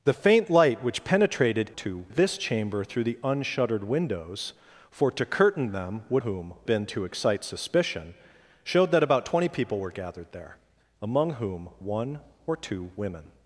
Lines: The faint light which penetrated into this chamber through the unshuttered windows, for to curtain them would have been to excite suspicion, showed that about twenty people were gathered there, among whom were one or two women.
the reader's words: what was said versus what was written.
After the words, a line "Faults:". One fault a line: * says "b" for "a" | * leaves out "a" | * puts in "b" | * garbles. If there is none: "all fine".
The faint light which penetrated two this chamber through the unshuttered windows, for to curtain them would whom been to excite suspicion, showed that about twenty people were gathered there, among whom one or two women.
Faults:
* says "two" for "into"
* says "whom" for "have"
* leaves out "were"